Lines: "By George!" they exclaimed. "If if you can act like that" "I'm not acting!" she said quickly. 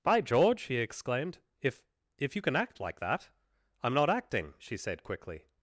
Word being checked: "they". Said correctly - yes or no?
no